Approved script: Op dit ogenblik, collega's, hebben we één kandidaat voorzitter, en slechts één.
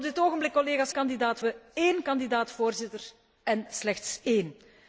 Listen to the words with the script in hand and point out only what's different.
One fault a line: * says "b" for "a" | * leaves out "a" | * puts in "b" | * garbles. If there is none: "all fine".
* says "kandidaat" for "hebben"